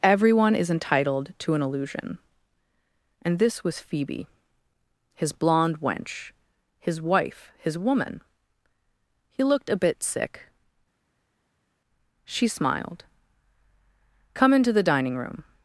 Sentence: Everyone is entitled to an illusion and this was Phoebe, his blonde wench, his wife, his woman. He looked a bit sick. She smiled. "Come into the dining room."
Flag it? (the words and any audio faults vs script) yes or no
no